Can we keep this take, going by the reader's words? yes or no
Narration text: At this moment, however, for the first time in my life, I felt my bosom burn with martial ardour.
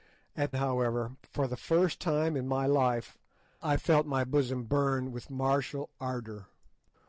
no